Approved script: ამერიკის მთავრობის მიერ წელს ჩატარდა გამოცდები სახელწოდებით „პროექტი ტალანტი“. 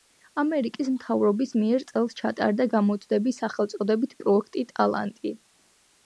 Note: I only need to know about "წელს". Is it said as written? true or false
true